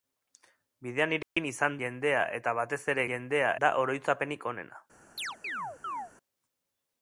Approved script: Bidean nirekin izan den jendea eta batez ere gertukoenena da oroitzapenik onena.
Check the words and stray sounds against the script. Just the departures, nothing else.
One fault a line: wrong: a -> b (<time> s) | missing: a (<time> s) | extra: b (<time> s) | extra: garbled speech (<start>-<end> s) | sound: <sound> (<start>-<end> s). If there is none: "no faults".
sound: dropout (1.2-1.4 s)
missing: den (1.8 s)
wrong: gertukoenena -> jendea (3.1 s)
sound: chirp (5.2-6.1 s)